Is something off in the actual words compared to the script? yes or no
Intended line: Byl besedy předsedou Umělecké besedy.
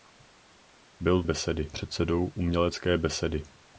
no